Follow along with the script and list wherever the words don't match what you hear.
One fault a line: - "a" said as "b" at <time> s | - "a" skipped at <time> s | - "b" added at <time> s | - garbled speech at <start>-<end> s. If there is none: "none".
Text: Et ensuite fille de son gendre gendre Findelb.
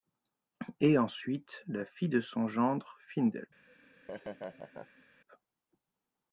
- "la" added at 1.7 s
- "gendre" skipped at 3.0 s